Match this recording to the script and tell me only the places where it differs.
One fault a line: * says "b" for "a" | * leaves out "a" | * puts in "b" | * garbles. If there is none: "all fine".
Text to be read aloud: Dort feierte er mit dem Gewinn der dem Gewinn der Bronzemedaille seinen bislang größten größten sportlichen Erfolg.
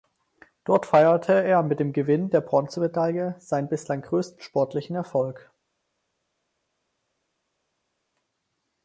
* leaves out "dem Gewinn der"
* leaves out "größten"